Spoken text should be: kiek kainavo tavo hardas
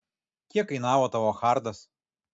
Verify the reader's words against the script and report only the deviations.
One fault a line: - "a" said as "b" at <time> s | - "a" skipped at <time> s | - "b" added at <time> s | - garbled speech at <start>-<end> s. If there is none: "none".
none